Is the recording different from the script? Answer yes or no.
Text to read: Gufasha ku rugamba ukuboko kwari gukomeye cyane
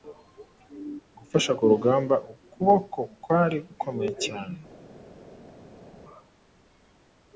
no